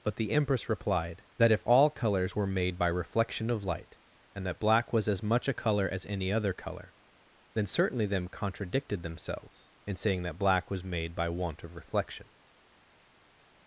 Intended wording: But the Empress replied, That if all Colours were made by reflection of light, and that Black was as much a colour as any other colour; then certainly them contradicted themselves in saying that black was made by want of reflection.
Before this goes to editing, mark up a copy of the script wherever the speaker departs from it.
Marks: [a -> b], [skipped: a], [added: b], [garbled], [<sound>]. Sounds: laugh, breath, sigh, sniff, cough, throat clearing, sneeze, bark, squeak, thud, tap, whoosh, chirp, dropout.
But the Empress replied, That if all Colours were made by reflection of light, and that Black was as much a colour as any other colour; then certainly them contradicted themselves in saying that black was made by want of reflection.